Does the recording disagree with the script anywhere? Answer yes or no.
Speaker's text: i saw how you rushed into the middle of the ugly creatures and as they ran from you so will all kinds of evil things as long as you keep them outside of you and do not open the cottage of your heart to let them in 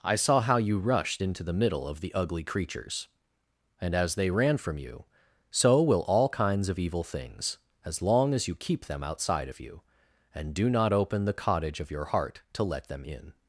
no